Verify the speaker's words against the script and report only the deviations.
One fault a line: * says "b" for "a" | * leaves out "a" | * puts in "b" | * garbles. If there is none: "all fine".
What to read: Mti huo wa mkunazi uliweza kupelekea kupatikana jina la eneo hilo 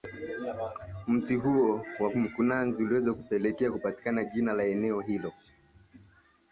all fine